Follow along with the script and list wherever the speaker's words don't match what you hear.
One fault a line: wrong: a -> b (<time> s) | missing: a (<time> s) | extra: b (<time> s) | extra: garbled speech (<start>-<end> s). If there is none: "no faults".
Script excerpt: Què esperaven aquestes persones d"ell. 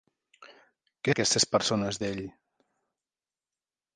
missing: esperaven (1.1 s)